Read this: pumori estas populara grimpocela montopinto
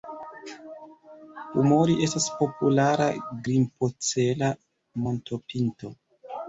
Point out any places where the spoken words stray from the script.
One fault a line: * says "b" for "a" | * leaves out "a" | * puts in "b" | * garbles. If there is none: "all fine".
all fine